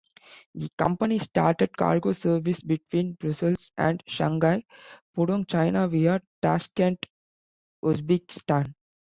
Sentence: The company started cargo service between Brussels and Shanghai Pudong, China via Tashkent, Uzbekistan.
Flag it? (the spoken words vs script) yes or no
no